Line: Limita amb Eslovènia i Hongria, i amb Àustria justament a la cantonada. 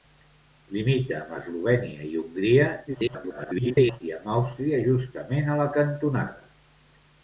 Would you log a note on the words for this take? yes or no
yes